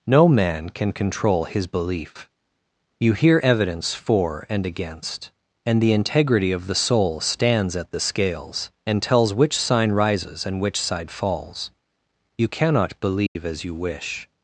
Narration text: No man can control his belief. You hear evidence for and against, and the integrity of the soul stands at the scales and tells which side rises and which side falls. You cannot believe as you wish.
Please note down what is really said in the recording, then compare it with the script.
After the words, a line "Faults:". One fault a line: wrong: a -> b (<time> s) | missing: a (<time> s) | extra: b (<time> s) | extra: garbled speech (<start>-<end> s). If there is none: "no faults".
No man can control his belief. You hear evidence for and against, and the integrity of the soul stands at the scales and tells which sign rises and which side falls. You cannot believe as you wish.
Faults:
wrong: side -> sign (9.6 s)